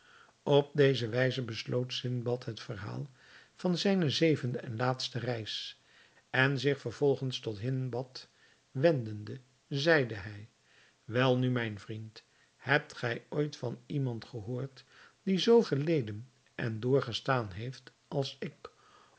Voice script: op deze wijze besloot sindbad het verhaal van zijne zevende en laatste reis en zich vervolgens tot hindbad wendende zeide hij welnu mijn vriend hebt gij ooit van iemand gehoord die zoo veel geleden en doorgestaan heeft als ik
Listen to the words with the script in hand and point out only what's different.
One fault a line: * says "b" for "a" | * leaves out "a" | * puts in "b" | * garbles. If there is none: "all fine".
* leaves out "veel"